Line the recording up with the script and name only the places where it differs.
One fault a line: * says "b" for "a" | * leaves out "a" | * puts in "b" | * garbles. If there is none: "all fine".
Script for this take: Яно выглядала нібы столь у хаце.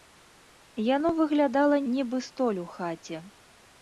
all fine